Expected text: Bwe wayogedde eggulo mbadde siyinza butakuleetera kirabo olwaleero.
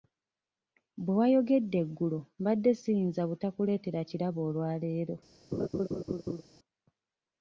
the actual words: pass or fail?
pass